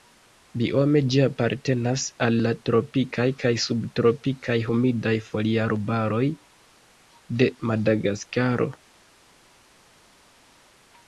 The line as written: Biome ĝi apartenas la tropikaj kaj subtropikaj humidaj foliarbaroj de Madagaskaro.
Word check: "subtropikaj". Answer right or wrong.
right